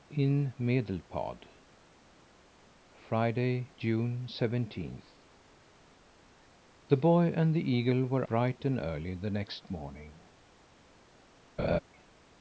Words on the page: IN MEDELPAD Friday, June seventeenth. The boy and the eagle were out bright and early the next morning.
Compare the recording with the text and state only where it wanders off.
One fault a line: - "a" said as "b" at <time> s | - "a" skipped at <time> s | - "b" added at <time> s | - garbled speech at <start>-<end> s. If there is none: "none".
- "out" skipped at 8.3 s